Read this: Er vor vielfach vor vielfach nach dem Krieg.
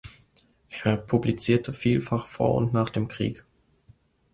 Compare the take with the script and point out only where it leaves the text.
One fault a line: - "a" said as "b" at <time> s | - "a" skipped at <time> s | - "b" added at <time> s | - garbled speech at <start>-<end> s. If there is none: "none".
- "vor" said as "publizierte" at 1.0 s
- "vielfach" said as "und" at 2.5 s